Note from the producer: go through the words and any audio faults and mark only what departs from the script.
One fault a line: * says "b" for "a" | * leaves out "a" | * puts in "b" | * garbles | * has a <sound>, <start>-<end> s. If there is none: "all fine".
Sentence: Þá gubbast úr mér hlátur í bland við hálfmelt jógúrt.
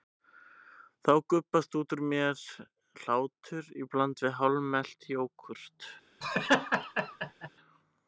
* puts in "út"
* has a laugh, 6.2-7.5 s